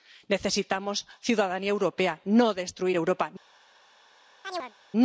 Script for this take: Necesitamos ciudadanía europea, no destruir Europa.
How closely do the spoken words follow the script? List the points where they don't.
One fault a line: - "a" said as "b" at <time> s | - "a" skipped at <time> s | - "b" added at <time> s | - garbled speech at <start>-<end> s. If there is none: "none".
none